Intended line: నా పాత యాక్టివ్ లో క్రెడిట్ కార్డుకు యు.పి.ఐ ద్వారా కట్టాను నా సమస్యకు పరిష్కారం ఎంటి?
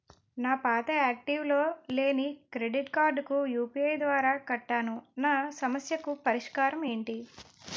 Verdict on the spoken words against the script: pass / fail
fail